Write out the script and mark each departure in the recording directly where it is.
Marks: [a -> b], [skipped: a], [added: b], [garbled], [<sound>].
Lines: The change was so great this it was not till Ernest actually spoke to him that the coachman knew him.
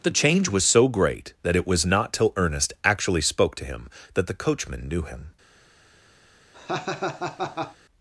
The change was so great [this -> that] it was not till Ernest actually spoke to him that the coachman knew him. [laugh]